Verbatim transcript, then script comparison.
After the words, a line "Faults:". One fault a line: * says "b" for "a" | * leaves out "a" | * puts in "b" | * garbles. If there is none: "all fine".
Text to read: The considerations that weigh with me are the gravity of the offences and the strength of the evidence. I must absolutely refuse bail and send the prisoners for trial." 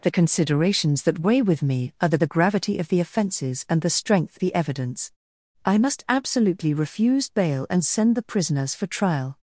The considerations that weigh with me are the the gravity of the offences and the strength the evidence. I must absolutely refuse bail and send the prisoners for trial."
Faults:
* puts in "the"
* leaves out "of"